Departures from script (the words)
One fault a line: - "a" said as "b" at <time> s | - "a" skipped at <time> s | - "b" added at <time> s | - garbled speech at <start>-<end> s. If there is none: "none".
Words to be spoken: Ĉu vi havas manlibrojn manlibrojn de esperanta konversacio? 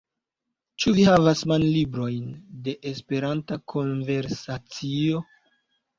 - "manlibrojn" skipped at 2.3 s